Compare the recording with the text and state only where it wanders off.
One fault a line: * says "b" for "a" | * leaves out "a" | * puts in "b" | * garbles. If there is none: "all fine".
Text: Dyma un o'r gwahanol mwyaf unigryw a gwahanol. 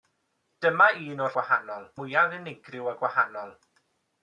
all fine